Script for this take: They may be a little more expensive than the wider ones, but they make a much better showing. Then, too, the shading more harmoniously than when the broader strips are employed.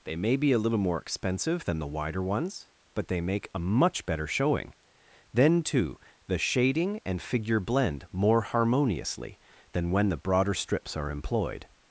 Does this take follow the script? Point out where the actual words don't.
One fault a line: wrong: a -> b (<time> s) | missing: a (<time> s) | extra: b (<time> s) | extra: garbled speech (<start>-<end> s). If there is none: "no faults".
extra: and figure blend (7.0 s)